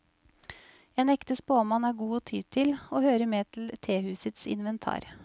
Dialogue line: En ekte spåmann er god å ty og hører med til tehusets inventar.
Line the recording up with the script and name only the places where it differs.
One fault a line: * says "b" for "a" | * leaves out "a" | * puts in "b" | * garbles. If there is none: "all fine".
* puts in "til"